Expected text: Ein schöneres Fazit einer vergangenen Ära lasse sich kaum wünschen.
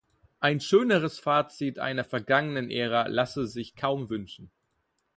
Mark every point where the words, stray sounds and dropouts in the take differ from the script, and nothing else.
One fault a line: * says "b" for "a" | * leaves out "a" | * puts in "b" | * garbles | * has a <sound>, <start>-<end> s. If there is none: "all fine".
all fine